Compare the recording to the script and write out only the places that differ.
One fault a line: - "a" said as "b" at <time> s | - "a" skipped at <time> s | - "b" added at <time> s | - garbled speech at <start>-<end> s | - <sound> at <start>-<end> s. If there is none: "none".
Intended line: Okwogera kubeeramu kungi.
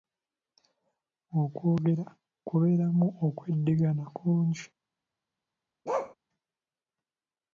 - "okweddingana" added at 3.3 s
- bark at 5.8-6.1 s